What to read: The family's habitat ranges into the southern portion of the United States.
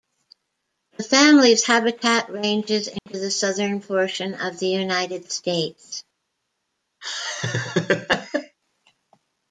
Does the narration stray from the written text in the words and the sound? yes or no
yes